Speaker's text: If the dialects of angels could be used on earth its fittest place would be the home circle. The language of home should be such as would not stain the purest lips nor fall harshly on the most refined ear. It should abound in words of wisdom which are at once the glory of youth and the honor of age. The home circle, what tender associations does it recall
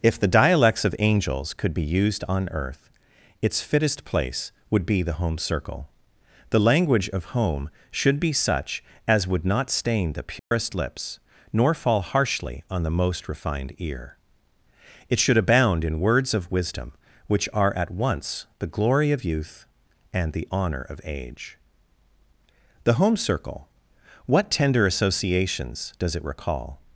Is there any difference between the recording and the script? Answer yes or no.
no